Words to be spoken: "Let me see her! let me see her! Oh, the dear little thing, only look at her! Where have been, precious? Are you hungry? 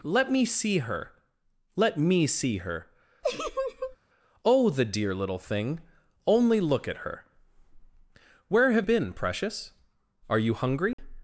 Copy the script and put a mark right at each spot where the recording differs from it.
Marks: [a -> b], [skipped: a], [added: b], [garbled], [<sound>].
"Let me see her! let me see her! [laugh] Oh, the dear little thing, only look at her! Where have been, precious? Are you hungry? [dropout]